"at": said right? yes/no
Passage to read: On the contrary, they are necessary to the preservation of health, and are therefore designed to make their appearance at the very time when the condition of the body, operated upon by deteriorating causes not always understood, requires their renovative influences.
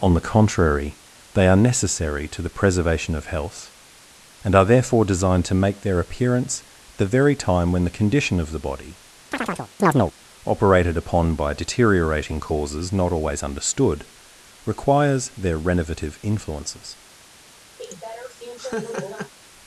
no